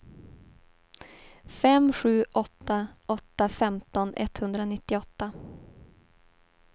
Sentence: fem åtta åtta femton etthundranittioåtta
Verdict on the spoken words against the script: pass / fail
fail